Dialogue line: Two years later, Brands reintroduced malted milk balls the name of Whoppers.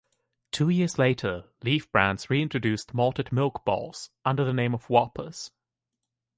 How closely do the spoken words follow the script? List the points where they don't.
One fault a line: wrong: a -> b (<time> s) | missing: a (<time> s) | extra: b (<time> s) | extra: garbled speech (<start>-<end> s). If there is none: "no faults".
extra: Leaf (1.6 s)
extra: under (4.2 s)